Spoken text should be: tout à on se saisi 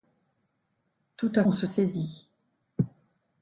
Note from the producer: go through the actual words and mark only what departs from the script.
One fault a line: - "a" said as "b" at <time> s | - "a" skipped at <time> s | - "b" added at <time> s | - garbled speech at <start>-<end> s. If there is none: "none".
none